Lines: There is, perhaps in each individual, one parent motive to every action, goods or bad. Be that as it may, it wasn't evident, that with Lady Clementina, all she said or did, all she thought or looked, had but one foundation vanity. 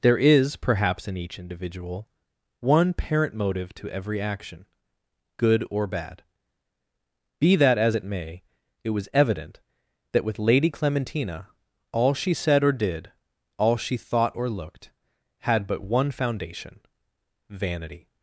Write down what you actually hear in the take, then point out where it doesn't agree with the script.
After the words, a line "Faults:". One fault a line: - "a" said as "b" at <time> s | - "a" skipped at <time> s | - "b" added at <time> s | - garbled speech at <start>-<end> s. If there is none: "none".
There is, perhaps in each individual, one parent motive to every action, good or bad. Be that as it may, it was evident, that with Lady Clementina, all she said or did, all she thought or looked, had but one foundation vanity.
Faults:
- "goods" said as "good" at 5.4 s
- "wasn't" said as "was" at 8.9 s